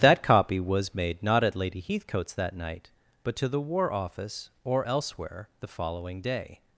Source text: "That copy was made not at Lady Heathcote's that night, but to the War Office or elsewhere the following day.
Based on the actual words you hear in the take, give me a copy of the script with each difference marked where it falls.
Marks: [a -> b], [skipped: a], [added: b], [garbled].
"That copy was made not at Lady Heathcote's that night, but to the War Office or elsewhere the following day.